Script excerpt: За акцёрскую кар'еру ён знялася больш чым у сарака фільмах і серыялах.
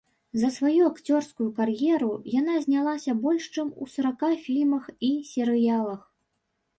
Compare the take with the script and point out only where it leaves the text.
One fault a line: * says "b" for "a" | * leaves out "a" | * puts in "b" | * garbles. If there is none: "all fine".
* puts in "сваю"
* says "яна" for "ён"